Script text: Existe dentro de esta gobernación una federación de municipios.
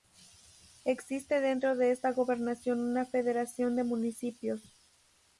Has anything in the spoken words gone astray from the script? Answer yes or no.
no